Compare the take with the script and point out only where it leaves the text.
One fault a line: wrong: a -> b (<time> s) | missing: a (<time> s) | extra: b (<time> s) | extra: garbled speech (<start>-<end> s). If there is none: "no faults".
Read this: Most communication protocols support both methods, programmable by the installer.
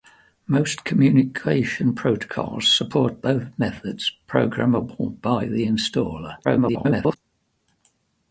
extra: garbled speech (6.4-7.2 s)